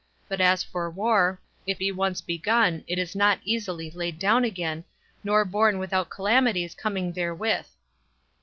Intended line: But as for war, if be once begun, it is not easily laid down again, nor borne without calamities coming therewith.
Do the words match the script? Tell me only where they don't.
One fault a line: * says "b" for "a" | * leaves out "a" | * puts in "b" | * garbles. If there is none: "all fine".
all fine